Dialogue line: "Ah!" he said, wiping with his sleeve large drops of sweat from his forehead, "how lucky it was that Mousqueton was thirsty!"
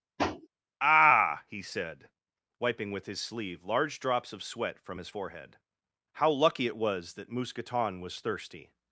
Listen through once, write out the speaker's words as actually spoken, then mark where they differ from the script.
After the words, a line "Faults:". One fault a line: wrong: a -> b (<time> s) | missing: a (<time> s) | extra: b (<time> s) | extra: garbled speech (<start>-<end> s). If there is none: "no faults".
"Ah!" he said, wiping with his sleeve large drops of sweat from his forehead, "how lucky it was that Mousqueton was thirsty!"
Faults:
no faults